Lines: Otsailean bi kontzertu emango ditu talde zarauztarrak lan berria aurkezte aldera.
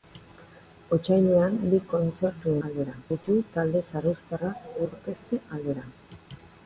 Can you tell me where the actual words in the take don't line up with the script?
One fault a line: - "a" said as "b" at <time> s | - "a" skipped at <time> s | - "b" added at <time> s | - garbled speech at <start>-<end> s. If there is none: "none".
- "emango" said as "aldera" at 2.7 s
- "lan berria" skipped at 4.7 s